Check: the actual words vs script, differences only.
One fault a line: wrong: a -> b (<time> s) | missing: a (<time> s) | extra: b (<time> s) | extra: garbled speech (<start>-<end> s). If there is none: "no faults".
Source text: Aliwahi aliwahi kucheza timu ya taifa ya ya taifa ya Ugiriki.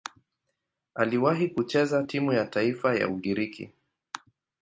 missing: aliwahi (1.5 s)
missing: ya taifa ya (3.1 s)